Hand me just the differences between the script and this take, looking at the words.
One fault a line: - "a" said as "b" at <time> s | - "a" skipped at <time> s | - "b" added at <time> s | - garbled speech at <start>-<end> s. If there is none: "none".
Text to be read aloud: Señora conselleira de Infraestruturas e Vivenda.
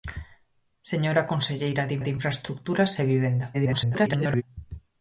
- "de" added at 2.0 s
- garbled speech at 3.5-4.4 s